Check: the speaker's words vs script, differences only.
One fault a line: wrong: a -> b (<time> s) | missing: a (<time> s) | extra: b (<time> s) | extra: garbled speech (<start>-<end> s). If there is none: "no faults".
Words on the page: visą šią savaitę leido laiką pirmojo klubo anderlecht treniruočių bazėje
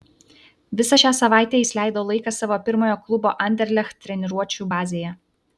extra: jis (1.6 s)
extra: savo (2.4 s)